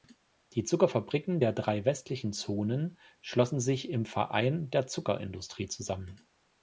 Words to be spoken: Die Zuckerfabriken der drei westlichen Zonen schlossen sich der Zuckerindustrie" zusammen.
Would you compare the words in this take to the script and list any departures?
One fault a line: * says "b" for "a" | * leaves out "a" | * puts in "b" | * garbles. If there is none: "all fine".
* puts in "im Verein"